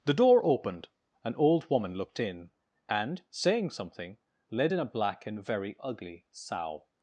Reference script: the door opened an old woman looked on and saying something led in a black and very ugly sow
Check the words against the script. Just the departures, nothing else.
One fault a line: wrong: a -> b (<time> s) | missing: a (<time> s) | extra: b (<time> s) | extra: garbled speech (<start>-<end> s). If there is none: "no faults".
wrong: on -> in (2.2 s)